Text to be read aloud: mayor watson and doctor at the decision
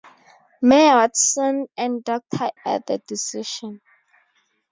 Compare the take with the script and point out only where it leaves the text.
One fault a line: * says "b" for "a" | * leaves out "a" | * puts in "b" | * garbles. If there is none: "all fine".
all fine